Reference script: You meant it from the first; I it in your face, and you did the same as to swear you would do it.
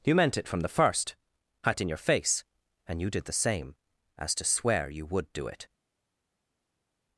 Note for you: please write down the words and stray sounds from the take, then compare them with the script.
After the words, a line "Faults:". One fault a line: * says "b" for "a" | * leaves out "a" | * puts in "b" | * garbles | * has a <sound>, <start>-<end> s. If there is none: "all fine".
You meant it from the first; I it in your face, and you did the same as to swear you would do it.
Faults:
all fine